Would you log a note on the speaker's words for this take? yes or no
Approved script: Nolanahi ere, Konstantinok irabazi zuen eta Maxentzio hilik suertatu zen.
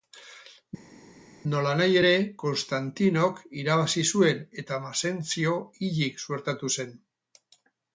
no